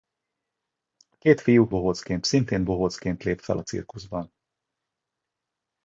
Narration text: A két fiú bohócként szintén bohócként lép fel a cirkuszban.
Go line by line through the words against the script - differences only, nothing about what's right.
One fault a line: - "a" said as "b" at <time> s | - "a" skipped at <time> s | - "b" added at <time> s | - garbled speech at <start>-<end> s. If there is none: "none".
none